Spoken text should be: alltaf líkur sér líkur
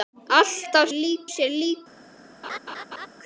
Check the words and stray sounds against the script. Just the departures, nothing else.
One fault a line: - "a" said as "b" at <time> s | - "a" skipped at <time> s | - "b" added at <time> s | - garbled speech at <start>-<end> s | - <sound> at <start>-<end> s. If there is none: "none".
- laugh at 2.4-3.1 s